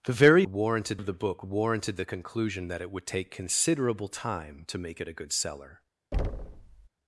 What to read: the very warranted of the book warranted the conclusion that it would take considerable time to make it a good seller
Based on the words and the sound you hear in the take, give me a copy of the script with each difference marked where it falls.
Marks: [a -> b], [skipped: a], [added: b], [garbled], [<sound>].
the very warranted of the book warranted the conclusion that it would take considerable time to make it a good seller [thud]